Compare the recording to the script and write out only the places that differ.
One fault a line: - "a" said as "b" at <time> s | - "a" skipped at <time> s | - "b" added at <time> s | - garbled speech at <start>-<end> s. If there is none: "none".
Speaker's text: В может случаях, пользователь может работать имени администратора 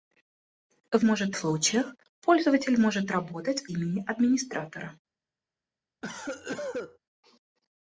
none